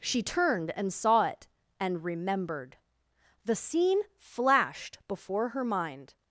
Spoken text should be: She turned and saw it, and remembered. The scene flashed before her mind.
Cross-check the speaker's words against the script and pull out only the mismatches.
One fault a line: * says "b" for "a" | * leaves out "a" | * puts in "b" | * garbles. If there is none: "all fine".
all fine